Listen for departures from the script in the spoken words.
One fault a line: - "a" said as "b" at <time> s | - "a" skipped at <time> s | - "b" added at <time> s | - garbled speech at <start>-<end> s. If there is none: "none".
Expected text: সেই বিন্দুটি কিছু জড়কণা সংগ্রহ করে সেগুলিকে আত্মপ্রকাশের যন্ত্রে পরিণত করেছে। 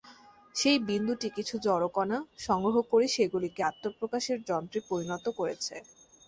none